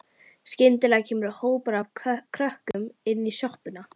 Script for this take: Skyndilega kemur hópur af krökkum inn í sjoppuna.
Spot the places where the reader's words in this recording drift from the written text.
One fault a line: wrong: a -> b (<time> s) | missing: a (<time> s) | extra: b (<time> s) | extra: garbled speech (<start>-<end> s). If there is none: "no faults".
no faults